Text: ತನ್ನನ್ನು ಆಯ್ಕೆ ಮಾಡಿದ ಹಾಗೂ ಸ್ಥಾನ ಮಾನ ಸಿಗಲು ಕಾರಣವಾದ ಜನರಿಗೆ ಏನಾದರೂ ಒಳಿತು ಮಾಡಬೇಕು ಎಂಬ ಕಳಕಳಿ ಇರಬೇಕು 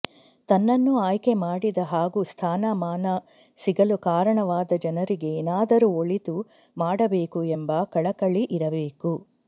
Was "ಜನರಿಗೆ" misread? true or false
false